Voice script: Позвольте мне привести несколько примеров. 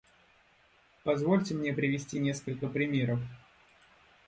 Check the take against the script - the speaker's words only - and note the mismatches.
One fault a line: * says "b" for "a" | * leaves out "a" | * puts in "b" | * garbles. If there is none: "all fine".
all fine